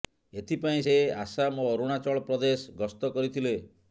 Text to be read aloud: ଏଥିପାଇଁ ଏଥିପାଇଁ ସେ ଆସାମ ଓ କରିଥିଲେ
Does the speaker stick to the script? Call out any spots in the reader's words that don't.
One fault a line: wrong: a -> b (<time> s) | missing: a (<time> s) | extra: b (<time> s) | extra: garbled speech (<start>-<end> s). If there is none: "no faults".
missing: ଏଥିପାଇଁ (0.8 s)
extra: ଅରୁଣାଚଳ ପ୍ରଦେଶ ଗସ୍ତ (1.7 s)